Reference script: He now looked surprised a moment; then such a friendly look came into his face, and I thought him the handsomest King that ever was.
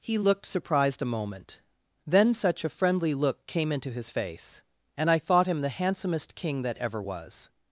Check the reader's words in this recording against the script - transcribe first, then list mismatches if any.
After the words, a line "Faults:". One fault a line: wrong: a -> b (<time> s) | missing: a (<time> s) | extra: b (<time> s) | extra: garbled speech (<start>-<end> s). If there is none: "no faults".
He looked surprised a moment; then such a friendly look came into his face, and I thought him the handsomest King that ever was.
Faults:
missing: now (0.2 s)